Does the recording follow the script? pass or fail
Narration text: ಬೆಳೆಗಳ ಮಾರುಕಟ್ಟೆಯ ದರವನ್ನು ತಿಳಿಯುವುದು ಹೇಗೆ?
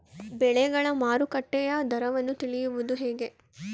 pass